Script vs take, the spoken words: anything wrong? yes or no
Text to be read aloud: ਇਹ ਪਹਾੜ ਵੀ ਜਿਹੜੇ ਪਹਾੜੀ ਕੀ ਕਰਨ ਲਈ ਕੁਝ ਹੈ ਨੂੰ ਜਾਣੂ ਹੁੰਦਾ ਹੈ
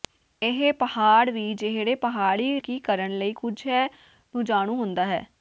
no